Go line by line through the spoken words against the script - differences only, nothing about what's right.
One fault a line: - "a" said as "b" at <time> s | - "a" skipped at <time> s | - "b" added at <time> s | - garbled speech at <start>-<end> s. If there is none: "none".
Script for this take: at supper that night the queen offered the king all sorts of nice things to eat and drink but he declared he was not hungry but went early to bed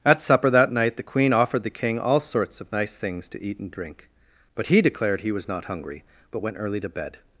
none